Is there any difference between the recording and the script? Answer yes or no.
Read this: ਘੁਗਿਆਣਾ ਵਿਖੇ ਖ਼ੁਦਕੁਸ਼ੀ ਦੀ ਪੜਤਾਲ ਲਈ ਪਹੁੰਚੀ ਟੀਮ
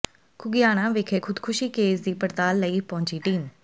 yes